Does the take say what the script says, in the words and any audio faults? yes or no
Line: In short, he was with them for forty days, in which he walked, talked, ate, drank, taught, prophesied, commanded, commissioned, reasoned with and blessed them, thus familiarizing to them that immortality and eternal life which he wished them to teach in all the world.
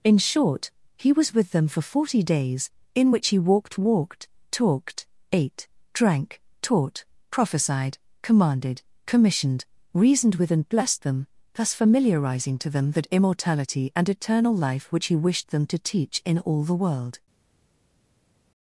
no